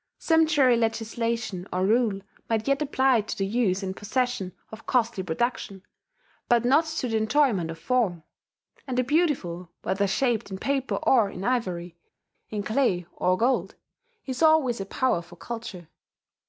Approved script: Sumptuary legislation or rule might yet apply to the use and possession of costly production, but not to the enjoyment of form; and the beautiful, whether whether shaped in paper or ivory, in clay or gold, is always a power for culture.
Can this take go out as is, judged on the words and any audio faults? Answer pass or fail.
fail